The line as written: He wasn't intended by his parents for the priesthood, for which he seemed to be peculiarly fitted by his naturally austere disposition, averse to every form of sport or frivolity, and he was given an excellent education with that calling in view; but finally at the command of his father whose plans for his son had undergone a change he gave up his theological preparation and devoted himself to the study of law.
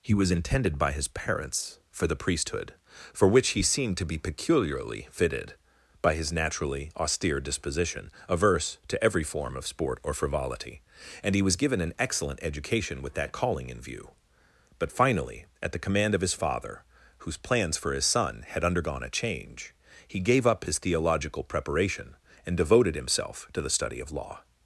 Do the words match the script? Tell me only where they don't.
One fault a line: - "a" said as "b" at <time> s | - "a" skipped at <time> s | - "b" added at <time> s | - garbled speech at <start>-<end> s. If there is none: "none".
- "wasn't" said as "was" at 0.1 s